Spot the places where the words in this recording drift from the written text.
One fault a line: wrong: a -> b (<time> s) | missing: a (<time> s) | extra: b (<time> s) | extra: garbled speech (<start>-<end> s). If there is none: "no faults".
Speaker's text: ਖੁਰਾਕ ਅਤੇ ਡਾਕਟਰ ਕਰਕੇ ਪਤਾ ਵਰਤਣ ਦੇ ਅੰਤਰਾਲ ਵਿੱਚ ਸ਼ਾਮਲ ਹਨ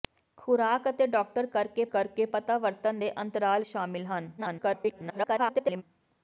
extra: ਕਰਕੇ (1.9 s)
missing: ਵਿੱਚ (3.6 s)
extra: garbled speech (4.4-5.8 s)